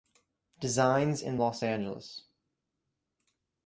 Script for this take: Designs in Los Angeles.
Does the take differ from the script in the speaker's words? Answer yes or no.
no